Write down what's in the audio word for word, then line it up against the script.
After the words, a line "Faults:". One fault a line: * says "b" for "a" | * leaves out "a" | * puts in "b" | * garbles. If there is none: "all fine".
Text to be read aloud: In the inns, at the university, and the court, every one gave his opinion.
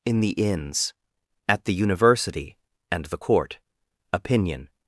In the inns, at the university, and the court, opinion.
Faults:
* leaves out "every one gave his"